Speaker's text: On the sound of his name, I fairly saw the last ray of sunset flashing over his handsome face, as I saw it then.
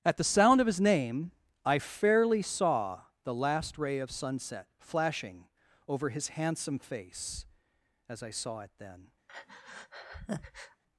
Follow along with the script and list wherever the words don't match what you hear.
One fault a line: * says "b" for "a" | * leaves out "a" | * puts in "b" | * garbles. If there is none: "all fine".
* says "At" for "On"